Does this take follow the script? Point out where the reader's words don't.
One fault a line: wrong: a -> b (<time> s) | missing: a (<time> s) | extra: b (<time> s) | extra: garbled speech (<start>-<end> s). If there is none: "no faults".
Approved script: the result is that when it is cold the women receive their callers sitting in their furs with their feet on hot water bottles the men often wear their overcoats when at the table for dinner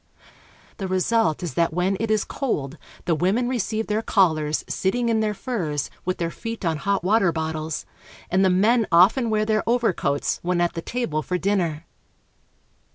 extra: and (8.3 s)